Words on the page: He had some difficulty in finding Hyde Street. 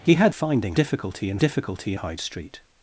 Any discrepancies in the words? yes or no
yes